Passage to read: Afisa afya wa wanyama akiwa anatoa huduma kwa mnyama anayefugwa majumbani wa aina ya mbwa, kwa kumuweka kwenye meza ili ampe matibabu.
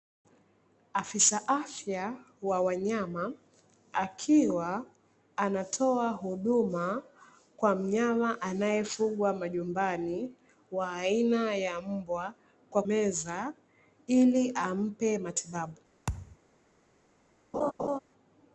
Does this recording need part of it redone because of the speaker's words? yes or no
yes